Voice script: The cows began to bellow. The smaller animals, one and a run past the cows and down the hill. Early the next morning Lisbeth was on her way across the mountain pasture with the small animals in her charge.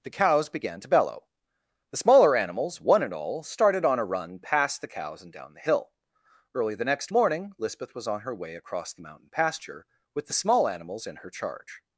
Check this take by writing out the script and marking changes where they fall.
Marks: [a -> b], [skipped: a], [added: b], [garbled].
The cows began to bellow. The smaller animals, one and [added: all started on] a run past the cows and down the hill. Early the next morning Lisbeth was on her way across the mountain pasture with the small animals in her charge.